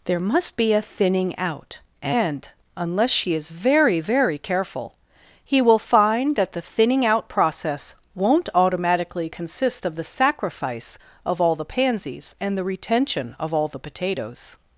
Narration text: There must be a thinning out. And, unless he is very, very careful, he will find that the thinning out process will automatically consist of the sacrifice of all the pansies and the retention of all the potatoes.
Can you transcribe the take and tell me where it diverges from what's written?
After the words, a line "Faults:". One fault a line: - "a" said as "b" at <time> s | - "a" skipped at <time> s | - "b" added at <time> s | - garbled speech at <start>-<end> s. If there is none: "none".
There must be a thinning out. And, unless she is very, very careful, he will find that the thinning out process won't automatically consist of the sacrifice of all the pansies and the retention of all the potatoes.
Faults:
- "he" said as "she" at 3.1 s
- "will" said as "won't" at 8.2 s